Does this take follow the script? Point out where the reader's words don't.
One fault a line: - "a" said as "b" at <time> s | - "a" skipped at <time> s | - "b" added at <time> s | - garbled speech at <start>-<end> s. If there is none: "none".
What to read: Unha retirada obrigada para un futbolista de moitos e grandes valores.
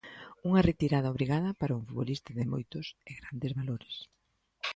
none